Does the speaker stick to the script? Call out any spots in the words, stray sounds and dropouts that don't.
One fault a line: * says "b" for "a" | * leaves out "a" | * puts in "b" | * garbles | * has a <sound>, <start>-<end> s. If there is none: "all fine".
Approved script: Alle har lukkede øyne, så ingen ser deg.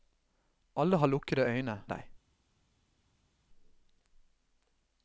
* leaves out "så ingen ser"